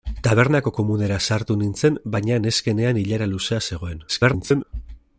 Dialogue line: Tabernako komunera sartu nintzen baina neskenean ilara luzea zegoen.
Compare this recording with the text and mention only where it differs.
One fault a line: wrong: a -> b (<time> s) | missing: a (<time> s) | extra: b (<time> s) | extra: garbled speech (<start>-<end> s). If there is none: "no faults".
extra: garbled speech (4.1-4.6 s)